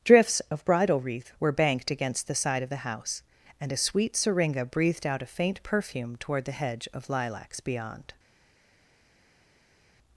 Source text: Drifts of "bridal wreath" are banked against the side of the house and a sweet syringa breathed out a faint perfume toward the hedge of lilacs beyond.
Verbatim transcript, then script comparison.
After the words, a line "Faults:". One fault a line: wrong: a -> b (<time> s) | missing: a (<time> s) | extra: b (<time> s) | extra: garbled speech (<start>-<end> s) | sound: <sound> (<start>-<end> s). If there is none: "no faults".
Drifts of "bridal wreath" were banked against the side of the house and a sweet syringa breathed out a faint perfume toward the hedge of lilacs beyond.
Faults:
wrong: are -> were (1.4 s)